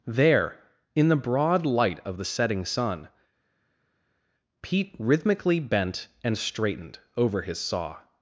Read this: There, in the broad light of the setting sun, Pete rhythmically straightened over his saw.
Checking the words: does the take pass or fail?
fail